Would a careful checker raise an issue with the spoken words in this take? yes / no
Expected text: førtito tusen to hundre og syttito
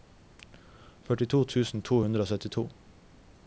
no